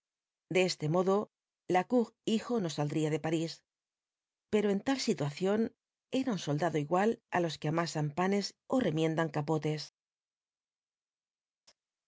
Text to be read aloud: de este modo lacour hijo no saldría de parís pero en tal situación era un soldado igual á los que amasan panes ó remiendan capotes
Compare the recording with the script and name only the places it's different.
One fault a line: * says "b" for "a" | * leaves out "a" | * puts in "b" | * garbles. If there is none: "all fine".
all fine